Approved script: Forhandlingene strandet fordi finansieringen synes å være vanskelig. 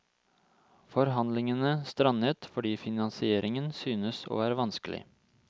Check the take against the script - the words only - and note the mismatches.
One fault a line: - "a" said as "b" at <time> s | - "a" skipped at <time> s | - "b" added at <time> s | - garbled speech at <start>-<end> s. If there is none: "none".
none